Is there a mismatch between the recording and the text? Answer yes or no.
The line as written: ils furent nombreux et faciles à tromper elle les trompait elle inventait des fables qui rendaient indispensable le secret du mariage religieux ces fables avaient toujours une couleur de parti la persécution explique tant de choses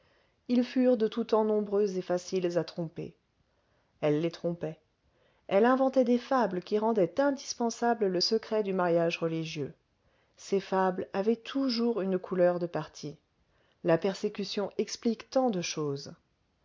yes